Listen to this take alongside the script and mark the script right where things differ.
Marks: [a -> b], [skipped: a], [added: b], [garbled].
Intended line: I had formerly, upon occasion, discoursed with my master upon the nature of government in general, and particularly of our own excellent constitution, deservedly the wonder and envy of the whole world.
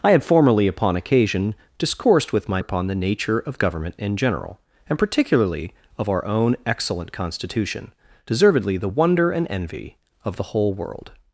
I had formerly, upon occasion, discoursed with my [skipped: master] upon the nature of government in general, and particularly of our own excellent constitution, deservedly the wonder and envy of the whole world.